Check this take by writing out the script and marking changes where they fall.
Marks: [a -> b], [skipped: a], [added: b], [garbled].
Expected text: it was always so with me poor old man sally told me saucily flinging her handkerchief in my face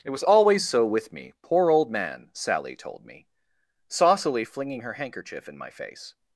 it was always so with me poor old man sally told me saucily flinging her handkerchief in my face